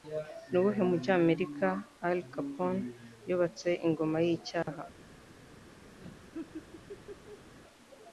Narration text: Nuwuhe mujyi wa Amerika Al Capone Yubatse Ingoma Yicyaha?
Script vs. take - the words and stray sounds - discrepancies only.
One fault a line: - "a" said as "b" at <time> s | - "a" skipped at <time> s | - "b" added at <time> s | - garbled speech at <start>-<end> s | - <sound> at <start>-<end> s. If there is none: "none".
- dropout at 4.6-4.7 s
- laugh at 6.0-7.5 s